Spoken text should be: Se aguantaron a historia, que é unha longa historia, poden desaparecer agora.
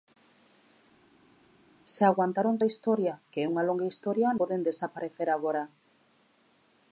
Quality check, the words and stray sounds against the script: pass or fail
pass